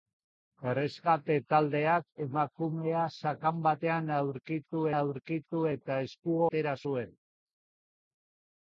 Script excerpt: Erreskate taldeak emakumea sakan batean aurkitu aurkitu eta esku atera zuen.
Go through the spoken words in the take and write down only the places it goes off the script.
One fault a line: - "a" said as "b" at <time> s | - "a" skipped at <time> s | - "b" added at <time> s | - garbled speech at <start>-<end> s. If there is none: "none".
none